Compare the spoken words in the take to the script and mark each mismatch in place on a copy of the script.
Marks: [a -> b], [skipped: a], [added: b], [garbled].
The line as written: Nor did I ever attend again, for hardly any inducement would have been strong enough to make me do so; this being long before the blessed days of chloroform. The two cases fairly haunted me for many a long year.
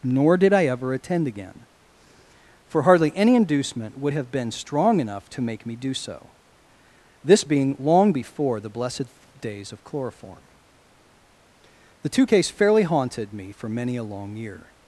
Nor did I ever attend again, for hardly any inducement would have been strong enough to make me do so; this being long before the blessed days of chloroform. The two [cases -> case] fairly haunted me for many a long year.